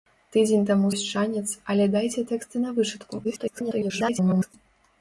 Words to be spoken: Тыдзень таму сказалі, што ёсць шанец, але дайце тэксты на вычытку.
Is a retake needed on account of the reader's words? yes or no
yes